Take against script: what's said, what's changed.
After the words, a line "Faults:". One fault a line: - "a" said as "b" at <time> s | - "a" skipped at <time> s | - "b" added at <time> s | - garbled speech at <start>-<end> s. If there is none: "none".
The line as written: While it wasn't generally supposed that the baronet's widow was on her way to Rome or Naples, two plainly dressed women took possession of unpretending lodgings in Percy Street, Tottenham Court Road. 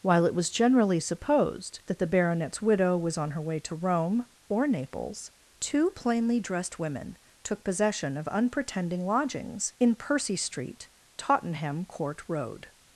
While it was generally supposed that the baronet's widow was on her way to Rome or Naples, two plainly dressed women took possession of unpretending lodgings in Percy Street, Tottenham Court Road.
Faults:
- "wasn't" said as "was" at 0.3 s